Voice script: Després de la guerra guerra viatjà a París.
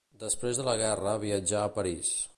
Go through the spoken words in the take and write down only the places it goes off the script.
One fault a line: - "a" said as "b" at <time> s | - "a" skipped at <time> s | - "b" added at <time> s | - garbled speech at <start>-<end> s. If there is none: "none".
- "guerra" skipped at 1.1 s